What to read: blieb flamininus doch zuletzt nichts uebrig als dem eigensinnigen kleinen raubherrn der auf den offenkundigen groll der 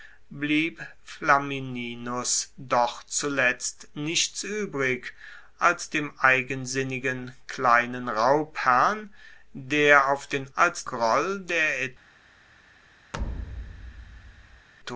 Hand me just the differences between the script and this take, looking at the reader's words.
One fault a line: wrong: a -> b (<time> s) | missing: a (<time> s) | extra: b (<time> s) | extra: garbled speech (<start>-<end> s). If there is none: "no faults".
wrong: offenkundigen -> als (10.6 s)